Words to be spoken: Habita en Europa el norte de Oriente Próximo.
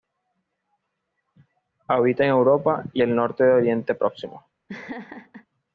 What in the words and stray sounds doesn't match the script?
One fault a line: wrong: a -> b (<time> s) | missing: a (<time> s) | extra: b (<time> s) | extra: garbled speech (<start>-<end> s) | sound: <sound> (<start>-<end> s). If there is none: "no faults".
extra: y (2.9 s)
sound: laugh (4.7-5.5 s)